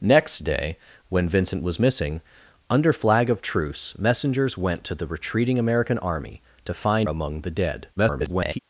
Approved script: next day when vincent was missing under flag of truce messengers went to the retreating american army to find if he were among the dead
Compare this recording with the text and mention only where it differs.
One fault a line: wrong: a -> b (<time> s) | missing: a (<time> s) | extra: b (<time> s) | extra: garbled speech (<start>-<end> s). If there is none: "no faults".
missing: if he were (7.1 s)
extra: garbled speech (8.0-8.6 s)